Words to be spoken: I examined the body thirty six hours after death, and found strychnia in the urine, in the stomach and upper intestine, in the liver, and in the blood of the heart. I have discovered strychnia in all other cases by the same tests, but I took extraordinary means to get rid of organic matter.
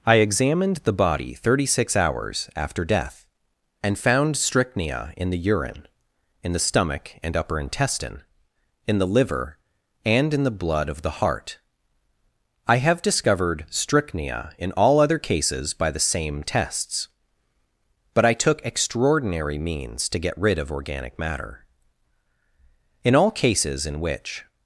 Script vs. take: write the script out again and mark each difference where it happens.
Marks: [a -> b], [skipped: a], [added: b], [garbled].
I examined the body thirty six hours after death, and found strychnia in the urine, in the stomach and upper intestine, in the liver, and in the blood of the heart. I have discovered strychnia in all other cases by the same tests, but I took extraordinary means to get rid of organic matter. [added: In all cases in which]